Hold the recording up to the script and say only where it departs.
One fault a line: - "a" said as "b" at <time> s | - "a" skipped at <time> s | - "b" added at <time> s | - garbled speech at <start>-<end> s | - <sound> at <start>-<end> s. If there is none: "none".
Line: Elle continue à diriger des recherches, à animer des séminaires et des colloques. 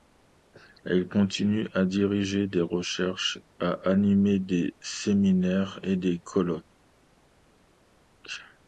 none